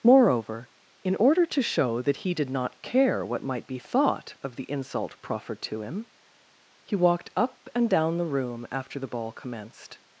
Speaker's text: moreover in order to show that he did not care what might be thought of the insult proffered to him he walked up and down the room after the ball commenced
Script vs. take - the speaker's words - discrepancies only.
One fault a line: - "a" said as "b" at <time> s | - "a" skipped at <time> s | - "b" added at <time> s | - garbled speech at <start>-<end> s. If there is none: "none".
none